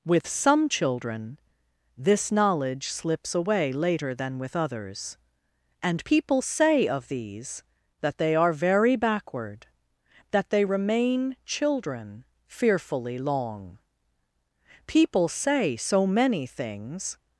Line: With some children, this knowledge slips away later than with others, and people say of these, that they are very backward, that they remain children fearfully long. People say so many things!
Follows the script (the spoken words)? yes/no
yes